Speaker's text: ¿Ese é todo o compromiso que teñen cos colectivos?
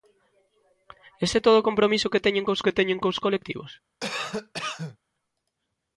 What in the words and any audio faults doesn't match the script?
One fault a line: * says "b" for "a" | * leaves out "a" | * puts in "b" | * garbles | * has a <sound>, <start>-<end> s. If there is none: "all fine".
* puts in "que teñen cos"
* has a cough, 4.0-5.0 s